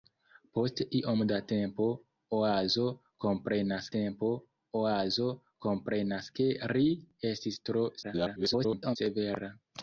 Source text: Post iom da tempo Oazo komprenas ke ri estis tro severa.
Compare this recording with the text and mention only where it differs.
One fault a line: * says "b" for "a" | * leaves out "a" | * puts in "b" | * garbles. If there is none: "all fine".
* puts in "tempo Oazo komprenas"
* garbles